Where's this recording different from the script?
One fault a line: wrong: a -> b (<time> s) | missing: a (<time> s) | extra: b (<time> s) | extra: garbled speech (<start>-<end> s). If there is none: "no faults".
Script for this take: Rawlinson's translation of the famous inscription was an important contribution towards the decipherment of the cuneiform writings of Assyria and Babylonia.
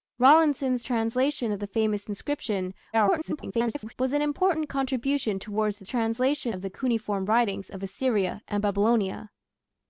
extra: garbled speech (2.9-3.9 s)
wrong: decipherment -> translation (5.9 s)